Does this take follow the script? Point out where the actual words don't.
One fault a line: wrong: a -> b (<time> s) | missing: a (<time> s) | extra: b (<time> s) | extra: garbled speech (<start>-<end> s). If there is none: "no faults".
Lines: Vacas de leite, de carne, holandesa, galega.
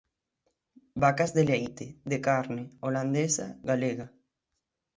no faults